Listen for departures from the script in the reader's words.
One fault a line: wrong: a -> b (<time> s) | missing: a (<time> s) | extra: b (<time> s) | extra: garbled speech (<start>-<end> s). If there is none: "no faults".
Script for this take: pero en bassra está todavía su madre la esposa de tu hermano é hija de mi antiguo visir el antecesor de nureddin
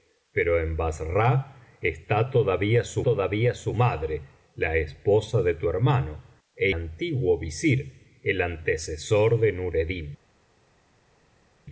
extra: todavía su (3.0 s)
missing: hija de mi (6.7 s)